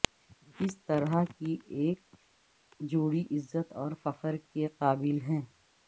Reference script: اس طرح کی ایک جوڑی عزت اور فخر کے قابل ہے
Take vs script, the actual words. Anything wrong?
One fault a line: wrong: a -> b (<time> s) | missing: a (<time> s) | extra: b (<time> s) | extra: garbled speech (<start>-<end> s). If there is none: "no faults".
no faults